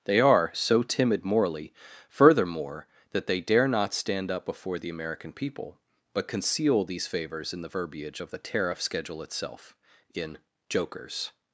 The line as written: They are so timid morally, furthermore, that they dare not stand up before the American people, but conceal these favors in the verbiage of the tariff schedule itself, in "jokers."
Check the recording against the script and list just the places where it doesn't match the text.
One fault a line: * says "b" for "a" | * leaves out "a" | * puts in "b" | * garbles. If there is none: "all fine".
all fine